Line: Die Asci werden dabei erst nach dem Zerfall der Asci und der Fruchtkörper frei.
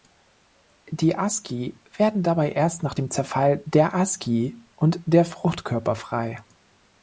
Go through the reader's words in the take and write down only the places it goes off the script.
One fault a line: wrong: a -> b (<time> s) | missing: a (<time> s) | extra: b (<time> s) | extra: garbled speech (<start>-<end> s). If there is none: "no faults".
no faults